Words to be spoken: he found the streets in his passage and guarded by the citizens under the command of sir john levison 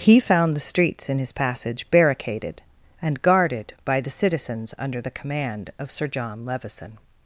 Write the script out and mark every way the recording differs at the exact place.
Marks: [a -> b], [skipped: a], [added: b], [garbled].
he found the streets in his passage [added: barricaded] and guarded by the citizens under the command of sir john levison